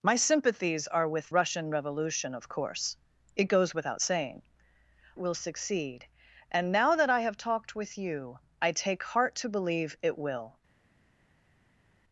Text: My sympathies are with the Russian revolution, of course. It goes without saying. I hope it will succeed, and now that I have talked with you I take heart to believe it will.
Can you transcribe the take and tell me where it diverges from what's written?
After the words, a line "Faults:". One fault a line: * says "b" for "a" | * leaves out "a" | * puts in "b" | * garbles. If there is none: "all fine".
My sympathies are with Russian revolution, of course. It goes without saying. will succeed, and now that I have talked with you I take heart to believe it will.
Faults:
* leaves out "the"
* leaves out "I hope it"